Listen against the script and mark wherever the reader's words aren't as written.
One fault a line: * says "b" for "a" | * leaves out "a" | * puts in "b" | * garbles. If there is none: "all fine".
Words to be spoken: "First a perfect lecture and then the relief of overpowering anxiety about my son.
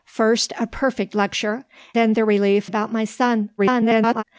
* leaves out "and"
* leaves out "of overpowering anxiety"
* garbles